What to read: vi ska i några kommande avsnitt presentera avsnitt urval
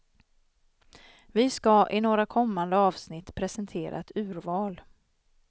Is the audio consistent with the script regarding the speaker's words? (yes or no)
no